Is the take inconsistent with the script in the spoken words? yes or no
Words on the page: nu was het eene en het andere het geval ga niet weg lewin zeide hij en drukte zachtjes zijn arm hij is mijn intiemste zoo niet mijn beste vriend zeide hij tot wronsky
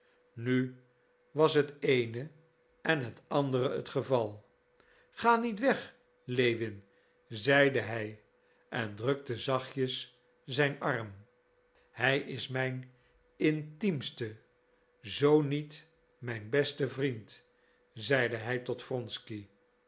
no